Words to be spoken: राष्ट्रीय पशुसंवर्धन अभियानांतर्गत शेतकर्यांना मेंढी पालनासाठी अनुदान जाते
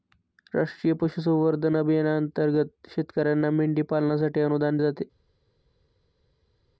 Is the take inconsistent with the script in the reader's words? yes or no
no